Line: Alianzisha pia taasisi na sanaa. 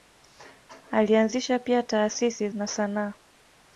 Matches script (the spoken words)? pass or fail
pass